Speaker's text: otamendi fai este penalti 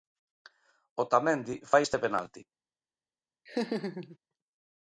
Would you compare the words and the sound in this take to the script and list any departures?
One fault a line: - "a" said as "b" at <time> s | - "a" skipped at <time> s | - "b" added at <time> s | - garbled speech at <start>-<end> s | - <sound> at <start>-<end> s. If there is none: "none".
- laugh at 3.5-4.2 s